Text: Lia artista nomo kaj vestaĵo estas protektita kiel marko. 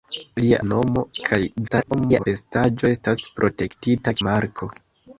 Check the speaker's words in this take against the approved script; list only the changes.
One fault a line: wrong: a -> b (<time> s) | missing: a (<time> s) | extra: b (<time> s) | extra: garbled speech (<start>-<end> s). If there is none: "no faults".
missing: artista (0.6 s)
extra: garbled speech (1.7-2.3 s)
missing: kiel (4.1 s)